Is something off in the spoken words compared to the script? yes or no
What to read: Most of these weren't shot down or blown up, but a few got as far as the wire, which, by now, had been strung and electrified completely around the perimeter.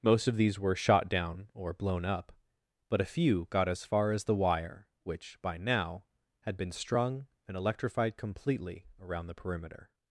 yes